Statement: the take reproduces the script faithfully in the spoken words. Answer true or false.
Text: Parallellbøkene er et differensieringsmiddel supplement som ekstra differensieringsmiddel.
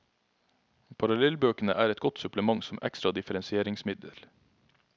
false